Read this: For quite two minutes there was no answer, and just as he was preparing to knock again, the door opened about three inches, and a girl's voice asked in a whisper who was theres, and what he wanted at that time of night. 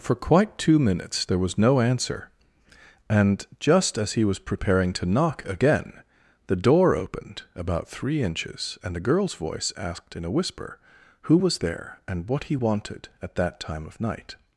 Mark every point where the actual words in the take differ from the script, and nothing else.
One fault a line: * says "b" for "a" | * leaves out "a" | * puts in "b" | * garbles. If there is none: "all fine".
* says "there" for "theres"